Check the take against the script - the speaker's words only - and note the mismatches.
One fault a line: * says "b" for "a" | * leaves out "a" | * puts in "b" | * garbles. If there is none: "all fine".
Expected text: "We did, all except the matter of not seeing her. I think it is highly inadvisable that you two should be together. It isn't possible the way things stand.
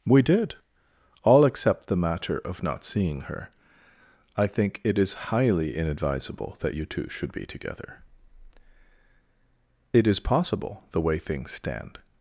* says "is" for "isn't"